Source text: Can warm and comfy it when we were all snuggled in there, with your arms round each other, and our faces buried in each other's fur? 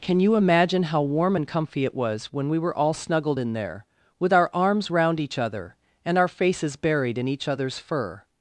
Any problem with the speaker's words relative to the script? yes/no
yes